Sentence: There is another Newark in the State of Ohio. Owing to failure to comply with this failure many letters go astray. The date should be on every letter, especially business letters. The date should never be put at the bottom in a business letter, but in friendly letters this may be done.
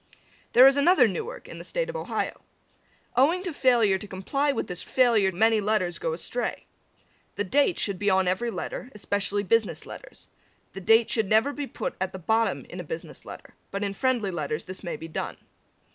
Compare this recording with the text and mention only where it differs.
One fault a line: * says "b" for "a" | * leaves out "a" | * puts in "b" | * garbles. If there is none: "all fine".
all fine